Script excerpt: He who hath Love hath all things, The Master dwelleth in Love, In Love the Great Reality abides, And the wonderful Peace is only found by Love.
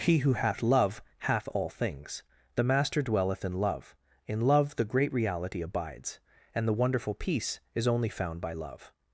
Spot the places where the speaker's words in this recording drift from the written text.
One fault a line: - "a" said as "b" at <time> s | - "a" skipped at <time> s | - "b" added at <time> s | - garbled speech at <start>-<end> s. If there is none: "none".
none